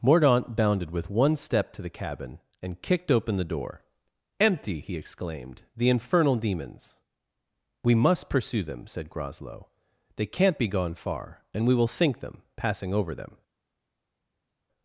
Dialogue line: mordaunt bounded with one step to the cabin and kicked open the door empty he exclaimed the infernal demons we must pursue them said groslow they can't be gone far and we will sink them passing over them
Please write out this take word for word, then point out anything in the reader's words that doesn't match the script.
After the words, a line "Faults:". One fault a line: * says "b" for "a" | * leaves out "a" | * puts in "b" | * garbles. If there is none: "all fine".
mordaunt bounded with one step to the cabin and kicked open the door empty he exclaimed the infernal demons we must pursue them said groslow they can't be gone far and we will sink them passing over them
Faults:
all fine